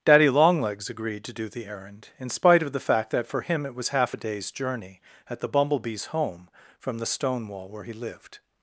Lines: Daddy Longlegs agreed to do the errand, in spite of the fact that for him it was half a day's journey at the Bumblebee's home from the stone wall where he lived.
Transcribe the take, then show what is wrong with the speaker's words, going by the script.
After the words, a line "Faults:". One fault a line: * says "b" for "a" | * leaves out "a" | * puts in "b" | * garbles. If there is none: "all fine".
Daddy Longlegs agreed to do the errand, in spite of the fact that for him it was half a day's journey at the Bumblebee's home from the stone wall where he lived.
Faults:
all fine